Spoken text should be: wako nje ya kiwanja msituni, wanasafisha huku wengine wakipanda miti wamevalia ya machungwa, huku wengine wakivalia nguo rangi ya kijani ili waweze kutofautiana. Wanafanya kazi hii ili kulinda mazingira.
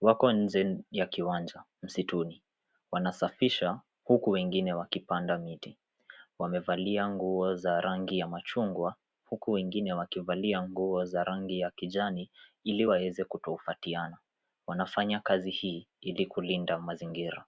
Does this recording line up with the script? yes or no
no